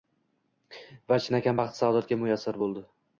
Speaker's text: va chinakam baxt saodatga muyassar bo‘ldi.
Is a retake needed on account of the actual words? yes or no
no